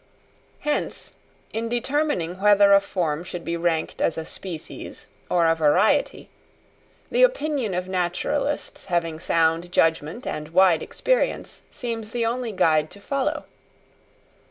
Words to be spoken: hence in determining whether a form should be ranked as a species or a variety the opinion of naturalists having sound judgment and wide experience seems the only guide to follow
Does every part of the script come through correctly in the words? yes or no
yes